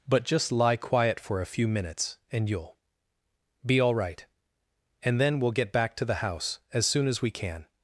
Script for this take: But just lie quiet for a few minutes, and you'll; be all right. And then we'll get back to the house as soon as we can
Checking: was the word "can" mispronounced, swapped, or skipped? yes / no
no